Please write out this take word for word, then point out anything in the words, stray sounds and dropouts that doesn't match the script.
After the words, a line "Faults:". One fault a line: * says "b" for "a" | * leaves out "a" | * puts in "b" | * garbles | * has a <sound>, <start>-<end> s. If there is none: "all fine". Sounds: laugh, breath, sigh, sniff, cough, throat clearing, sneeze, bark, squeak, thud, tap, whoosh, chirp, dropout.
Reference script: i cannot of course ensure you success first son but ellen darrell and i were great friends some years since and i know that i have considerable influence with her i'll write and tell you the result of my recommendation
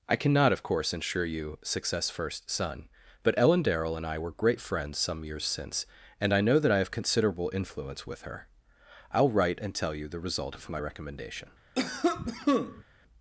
i cannot of course ensure you success first son but ellen darrell and i were great friends some years since and i know that i have considerable influence with her i'll write and tell you the result of my recommendation
Faults:
* has a cough, 11.8-12.8 s